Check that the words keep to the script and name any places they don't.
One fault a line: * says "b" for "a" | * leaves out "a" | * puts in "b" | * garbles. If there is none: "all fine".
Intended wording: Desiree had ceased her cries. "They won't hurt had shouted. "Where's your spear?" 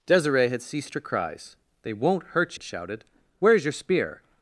all fine